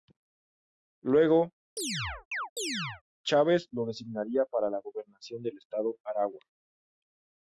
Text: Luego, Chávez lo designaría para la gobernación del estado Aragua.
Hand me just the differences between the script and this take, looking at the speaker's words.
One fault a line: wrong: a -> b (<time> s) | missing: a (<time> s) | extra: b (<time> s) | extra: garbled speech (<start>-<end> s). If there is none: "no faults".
no faults